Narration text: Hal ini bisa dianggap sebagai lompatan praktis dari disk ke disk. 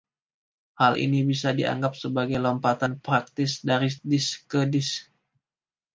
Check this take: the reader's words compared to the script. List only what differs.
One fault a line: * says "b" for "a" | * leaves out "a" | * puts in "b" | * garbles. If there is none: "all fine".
all fine